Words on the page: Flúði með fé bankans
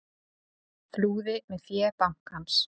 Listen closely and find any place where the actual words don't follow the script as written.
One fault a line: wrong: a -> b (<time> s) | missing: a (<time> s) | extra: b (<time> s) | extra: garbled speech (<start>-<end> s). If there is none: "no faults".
no faults